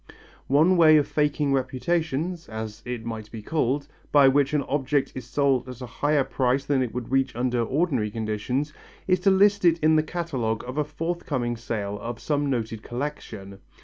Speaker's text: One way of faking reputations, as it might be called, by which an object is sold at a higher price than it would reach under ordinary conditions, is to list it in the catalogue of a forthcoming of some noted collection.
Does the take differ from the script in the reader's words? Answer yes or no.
yes